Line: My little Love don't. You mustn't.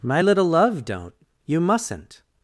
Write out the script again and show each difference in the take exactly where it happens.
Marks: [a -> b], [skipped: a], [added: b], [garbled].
My little Love don't. You mustn't.